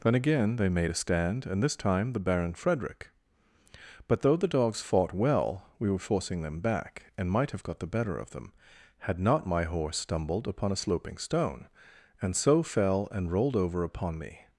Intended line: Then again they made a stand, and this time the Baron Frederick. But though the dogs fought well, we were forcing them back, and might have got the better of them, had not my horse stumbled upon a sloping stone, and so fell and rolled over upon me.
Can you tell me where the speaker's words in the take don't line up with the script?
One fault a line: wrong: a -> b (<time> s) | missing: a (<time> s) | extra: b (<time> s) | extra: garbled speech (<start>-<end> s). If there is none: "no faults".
no faults